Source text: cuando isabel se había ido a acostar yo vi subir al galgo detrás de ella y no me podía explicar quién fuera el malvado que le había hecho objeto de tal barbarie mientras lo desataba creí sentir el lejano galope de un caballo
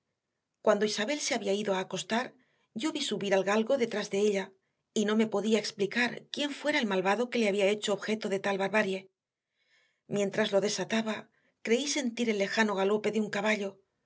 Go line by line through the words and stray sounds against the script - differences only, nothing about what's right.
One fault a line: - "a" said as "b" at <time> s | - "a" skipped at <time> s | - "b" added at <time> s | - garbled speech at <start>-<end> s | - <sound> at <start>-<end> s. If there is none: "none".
none